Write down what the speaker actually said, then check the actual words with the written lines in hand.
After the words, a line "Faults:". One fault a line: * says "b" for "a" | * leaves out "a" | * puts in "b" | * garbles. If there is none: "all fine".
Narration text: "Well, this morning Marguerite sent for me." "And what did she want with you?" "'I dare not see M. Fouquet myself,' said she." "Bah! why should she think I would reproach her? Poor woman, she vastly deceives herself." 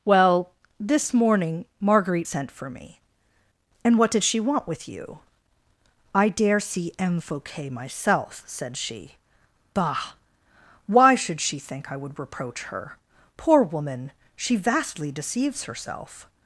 "Well, this morning Marguerite sent for me." "And what did she want with you?" "'I dare see M. Fouquet myself,' said she." "Bah! why should she think I would reproach her? Poor woman, she vastly deceives herself."
Faults:
* leaves out "not"